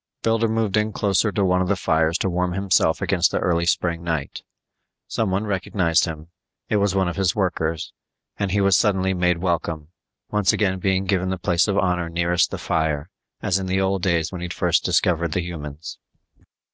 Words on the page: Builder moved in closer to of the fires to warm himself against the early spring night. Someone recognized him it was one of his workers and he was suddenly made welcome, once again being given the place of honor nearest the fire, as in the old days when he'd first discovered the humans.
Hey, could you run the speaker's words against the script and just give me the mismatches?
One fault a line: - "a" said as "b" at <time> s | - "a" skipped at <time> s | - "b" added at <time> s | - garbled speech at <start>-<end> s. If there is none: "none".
- "one" added at 1.4 s